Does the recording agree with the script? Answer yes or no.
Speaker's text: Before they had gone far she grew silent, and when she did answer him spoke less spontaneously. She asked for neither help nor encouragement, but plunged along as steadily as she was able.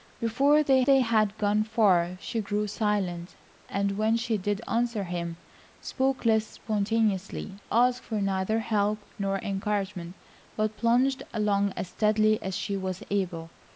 no